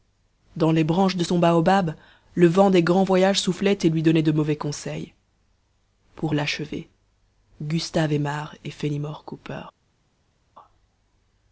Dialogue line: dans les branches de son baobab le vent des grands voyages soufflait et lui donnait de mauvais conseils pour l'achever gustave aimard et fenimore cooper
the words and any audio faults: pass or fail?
pass